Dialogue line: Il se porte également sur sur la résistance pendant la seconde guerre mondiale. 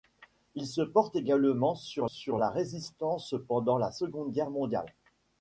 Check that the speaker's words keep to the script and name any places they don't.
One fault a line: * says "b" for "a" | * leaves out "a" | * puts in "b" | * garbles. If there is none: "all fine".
all fine